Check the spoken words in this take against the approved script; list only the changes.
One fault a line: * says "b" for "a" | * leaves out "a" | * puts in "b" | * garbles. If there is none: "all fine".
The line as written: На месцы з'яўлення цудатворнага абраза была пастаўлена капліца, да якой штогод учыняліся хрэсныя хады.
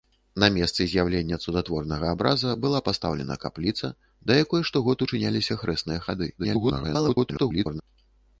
* garbles